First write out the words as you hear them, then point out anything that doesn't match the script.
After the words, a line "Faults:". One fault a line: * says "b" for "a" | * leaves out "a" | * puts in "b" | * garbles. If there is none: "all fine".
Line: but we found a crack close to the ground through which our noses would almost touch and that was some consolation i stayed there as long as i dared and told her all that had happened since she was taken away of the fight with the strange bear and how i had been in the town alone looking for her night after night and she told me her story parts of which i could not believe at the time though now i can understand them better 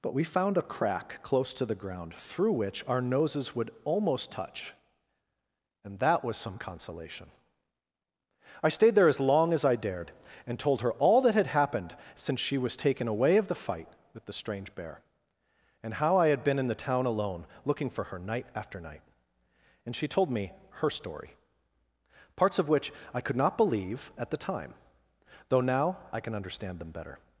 but we found a crack close to the ground through which our noses would almost touch and that was some consolation i stayed there as long as i dared and told her all that had happened since she was taken away of the fight with the strange bear and how i had been in the town alone looking for her night after night and she told me her story parts of which i could not believe at the time though now i can understand them better
Faults:
all fine